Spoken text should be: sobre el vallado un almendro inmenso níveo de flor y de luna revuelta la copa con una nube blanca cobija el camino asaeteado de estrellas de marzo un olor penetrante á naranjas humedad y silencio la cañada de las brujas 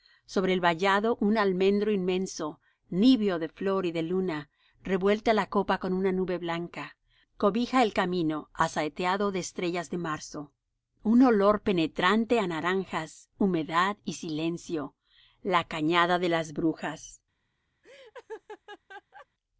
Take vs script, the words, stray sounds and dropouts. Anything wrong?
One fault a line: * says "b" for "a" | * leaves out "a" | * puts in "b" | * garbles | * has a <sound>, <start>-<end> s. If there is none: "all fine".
* has a laugh, 17.8-19.3 s